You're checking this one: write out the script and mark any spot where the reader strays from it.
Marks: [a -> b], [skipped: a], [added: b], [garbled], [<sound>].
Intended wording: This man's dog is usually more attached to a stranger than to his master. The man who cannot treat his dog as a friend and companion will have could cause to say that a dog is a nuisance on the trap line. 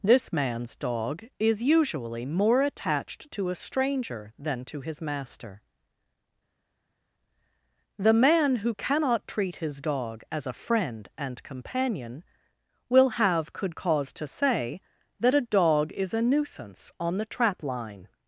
This man's dog is usually more attached to a stranger than to his master. The man who cannot treat his dog as a friend and companion will have could cause to say that a dog is a nuisance on the trap line.